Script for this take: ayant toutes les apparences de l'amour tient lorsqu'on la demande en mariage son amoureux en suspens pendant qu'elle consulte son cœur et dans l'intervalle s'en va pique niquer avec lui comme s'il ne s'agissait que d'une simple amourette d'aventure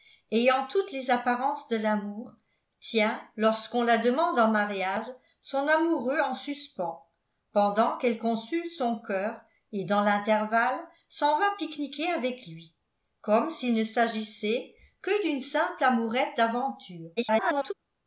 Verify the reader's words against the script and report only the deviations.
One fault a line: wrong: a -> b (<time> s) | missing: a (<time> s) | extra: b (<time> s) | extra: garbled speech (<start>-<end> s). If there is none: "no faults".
extra: garbled speech (17.2-17.7 s)